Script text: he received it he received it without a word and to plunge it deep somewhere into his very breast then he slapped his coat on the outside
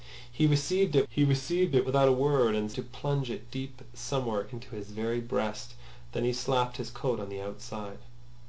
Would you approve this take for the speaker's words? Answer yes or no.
yes